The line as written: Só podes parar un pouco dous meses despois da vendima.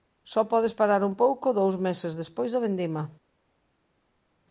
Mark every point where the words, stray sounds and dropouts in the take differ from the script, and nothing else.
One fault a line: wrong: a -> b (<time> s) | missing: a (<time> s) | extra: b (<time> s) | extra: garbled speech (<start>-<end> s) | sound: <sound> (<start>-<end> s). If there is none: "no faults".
no faults